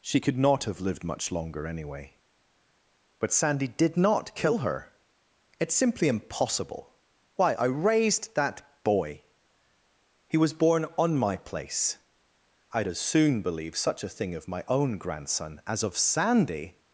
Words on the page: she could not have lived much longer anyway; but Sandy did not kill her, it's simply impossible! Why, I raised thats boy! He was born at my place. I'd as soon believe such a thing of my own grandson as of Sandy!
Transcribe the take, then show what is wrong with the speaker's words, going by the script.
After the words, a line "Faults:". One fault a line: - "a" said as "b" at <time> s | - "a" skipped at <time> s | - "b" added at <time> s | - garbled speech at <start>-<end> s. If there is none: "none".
she could not have lived much longer anyway; but Sandy did not kill her, it's simply impossible! Why, I raised that boy! He was born on my place. I'd as soon believe such a thing of my own grandson as of Sandy!
Faults:
- "thats" said as "that" at 8.3 s
- "at" said as "on" at 11.0 s